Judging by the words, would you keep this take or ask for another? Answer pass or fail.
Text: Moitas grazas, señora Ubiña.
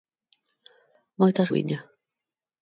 fail